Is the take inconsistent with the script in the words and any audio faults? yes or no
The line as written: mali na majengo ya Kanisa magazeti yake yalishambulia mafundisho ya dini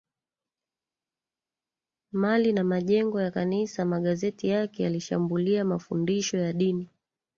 no